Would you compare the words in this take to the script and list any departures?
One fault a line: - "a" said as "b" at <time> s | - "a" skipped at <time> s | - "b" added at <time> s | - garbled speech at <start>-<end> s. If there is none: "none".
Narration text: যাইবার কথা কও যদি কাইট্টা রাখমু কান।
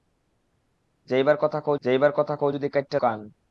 - "যাইবার কথা কও" added at 1.8 s
- "রাখমু" skipped at 3.0 s